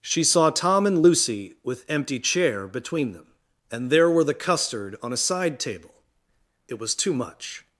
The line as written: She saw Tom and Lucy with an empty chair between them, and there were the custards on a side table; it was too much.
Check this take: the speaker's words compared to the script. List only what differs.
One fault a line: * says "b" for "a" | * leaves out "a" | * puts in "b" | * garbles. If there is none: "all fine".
* leaves out "an"
* says "custard" for "custards"